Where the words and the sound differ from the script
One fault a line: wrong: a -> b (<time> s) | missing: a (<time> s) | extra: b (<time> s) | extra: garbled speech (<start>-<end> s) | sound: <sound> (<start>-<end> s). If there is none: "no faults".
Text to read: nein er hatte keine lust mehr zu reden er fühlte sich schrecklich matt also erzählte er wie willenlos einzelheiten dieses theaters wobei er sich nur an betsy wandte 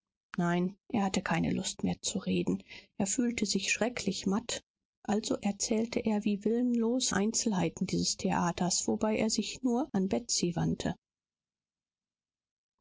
no faults